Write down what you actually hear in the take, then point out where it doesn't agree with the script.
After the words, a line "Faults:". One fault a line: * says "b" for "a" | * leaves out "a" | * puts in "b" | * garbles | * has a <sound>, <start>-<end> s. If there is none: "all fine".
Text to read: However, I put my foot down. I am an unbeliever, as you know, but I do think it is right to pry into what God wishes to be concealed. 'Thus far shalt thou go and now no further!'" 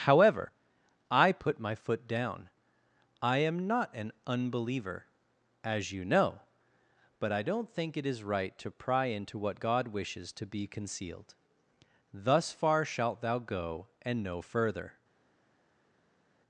However, I put my foot down. I am not an unbeliever, as you know, but I don't think it is right to pry into what God wishes to be concealed. 'Thus far shalt thou go and no further!'"
Faults:
* puts in "not"
* says "don't" for "do"
* leaves out "now"